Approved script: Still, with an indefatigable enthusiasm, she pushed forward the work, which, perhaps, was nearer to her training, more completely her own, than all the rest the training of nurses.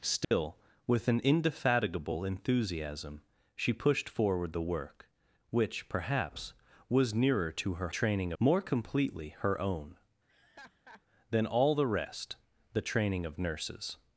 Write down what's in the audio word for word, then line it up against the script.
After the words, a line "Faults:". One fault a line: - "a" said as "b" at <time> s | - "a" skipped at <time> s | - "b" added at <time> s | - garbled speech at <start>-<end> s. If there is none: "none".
Still, with an indefatigable enthusiasm, she pushed forward the work, which, perhaps, was nearer to her training, more completely her own, than all the rest the training of nurses.
Faults:
none